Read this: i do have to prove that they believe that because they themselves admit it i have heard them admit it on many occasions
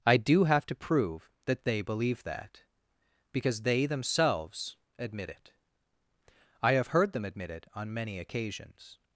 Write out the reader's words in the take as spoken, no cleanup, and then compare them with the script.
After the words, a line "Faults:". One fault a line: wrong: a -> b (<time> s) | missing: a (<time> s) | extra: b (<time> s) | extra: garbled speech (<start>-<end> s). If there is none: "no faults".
i do have to prove that they believe that because they themselves admit it i have heard them admit it on many occasions
Faults:
no faults